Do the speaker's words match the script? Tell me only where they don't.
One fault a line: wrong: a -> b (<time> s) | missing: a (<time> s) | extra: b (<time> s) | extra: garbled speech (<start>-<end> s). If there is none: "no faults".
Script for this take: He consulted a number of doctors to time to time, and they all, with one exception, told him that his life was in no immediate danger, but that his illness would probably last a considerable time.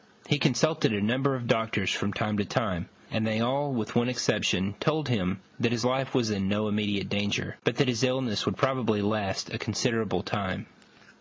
wrong: to -> from (1.9 s)